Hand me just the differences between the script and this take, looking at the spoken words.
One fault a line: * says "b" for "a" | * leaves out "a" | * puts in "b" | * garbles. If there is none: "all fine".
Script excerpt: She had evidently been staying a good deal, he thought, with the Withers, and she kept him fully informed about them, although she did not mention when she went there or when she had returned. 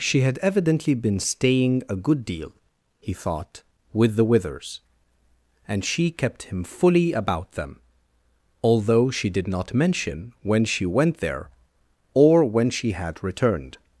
* leaves out "informed"